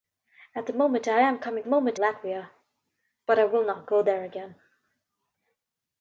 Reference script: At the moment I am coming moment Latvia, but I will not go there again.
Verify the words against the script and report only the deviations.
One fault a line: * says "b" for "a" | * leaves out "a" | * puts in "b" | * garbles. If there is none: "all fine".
all fine